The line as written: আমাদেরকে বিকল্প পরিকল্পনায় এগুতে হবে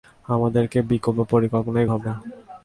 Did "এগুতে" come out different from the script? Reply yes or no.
yes